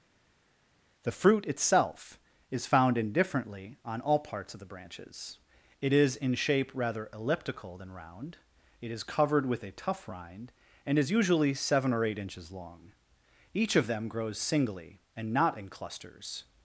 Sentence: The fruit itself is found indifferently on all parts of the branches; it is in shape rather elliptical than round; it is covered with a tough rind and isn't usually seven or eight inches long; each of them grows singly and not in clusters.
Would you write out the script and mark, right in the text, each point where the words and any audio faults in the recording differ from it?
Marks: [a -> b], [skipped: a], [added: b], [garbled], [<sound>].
The fruit itself is found indifferently on all parts of the branches; it is in shape rather elliptical than round; it is covered with a tough rind and [isn't -> is] usually seven or eight inches long; each of them grows singly and not in clusters.